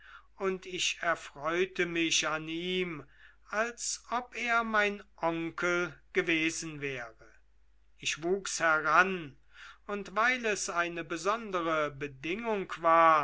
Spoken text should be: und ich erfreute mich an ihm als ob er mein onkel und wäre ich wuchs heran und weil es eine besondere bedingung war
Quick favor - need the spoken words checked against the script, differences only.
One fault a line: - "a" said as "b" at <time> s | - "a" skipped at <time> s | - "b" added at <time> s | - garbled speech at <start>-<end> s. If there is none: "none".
- "und" said as "gewesen" at 6.1 s